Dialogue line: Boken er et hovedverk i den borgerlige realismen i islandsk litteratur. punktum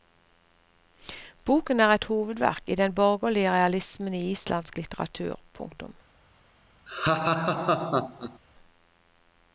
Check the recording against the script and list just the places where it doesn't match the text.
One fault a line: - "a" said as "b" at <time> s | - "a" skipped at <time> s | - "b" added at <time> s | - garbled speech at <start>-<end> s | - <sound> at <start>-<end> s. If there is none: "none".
- laugh at 6.9-8.4 s